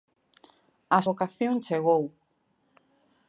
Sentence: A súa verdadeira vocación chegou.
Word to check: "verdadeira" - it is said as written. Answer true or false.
false